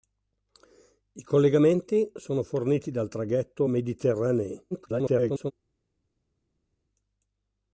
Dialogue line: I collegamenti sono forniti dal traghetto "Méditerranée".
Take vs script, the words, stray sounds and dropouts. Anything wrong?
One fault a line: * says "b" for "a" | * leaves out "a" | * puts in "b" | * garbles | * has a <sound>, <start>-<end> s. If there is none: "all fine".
* garbles